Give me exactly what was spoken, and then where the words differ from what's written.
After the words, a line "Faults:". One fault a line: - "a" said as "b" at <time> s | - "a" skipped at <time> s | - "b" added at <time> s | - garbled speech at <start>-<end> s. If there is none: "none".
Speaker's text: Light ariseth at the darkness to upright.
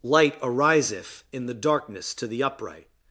Light ariseth in the darkness to the upright.
Faults:
- "at" said as "in" at 1.3 s
- "the" added at 2.2 s